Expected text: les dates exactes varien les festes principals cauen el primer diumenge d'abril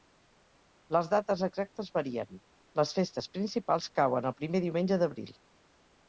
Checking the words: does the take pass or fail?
pass